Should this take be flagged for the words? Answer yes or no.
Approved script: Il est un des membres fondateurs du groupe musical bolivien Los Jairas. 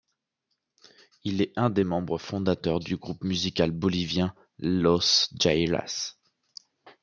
no